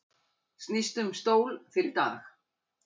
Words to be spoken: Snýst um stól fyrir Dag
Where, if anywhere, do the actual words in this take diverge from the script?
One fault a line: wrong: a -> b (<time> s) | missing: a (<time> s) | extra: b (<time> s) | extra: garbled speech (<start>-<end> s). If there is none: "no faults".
no faults